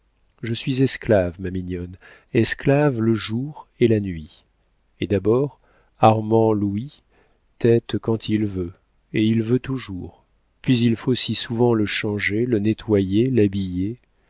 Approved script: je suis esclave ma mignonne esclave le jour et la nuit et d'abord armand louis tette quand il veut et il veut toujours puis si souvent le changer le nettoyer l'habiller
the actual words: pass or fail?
fail